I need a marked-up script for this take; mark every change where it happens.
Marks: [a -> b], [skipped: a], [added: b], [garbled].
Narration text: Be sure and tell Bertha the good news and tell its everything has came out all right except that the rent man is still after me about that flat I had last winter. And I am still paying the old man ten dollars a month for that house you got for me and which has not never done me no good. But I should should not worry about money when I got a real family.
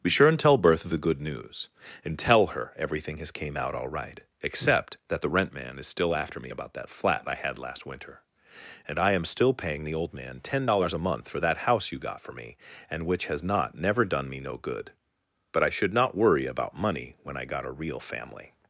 Be sure and tell Bertha the good news and tell [its -> her] everything has came out all right except that the rent man is still after me about that flat I had last winter. And I am still paying the old man ten dollars a month for that house you got for me and which has not never done me no good. But I should [skipped: should] not worry about money when I got a real family.